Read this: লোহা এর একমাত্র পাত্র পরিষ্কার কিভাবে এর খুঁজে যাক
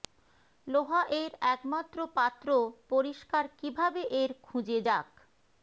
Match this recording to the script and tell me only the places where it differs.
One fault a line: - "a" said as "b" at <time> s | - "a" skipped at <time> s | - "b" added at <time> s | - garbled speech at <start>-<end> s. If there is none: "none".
none